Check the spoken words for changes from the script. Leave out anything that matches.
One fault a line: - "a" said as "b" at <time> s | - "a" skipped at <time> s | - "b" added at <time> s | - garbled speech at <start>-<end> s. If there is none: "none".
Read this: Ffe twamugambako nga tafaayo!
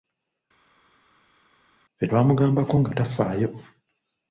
none